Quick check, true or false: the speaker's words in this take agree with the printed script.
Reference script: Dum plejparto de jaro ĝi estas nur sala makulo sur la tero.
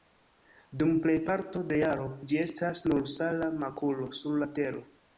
true